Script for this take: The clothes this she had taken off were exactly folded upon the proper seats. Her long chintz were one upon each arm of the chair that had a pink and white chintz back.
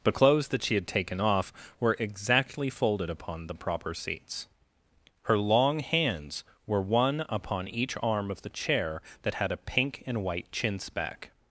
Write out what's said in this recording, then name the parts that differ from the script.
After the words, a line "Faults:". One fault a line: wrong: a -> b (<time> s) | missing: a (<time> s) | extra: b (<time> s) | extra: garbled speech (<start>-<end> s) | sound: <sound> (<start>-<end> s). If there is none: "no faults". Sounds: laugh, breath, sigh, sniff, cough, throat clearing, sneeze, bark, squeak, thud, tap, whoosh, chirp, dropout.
The clothes that she had taken off were exactly folded upon the proper seats. Her long hands were one upon each arm of the chair that had a pink and white chintz back.
Faults:
wrong: this -> that (0.5 s)
wrong: chintz -> hands (5.8 s)